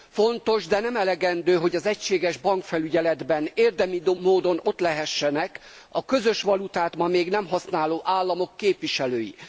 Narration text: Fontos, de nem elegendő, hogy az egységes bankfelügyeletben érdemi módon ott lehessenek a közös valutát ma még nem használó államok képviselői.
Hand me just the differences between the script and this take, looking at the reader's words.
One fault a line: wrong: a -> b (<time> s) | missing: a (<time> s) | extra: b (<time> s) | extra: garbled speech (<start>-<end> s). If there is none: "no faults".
no faults